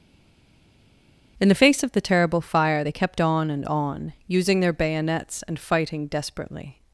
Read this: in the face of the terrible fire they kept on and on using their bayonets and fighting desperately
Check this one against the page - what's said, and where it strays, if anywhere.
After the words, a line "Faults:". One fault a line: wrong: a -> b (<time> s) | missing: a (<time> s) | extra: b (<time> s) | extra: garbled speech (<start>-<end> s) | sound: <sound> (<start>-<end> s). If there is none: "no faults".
in the face of the terrible fire they kept on and on using their bayonets and fighting desperately
Faults:
no faults